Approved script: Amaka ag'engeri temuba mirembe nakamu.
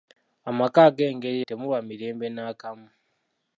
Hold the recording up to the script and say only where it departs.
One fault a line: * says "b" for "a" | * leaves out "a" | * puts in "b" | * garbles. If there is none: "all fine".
all fine